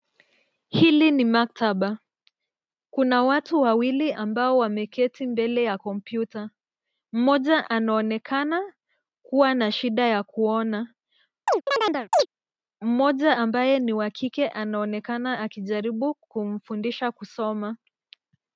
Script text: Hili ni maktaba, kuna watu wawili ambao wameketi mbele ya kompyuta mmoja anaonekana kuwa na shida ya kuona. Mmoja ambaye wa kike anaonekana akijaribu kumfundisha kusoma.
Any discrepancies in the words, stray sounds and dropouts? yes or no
yes